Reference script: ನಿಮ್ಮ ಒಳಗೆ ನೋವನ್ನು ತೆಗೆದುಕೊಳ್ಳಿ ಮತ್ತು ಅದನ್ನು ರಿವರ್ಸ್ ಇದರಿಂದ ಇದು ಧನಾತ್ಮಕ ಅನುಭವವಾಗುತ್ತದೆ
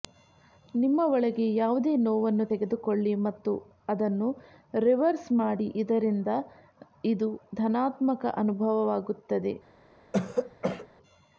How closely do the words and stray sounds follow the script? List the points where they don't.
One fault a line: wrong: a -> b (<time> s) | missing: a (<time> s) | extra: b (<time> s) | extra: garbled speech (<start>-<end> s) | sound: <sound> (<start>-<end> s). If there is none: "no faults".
extra: ಯಾವುದೇ (1.6 s)
extra: ಮಾಡಿ (5.4 s)
sound: throat clearing (10.1-10.9 s)